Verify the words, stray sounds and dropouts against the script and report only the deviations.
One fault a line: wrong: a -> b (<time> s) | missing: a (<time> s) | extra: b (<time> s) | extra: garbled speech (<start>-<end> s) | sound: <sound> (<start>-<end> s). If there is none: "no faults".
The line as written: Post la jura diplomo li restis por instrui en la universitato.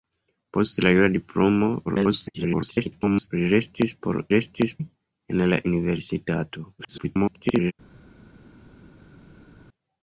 extra: garbled speech (1.9-3.3 s)
wrong: instrui -> restis (4.3 s)
extra: garbled speech (6.8-7.7 s)